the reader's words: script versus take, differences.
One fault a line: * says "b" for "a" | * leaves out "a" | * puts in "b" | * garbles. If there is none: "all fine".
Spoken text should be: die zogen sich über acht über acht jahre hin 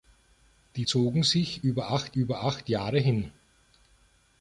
all fine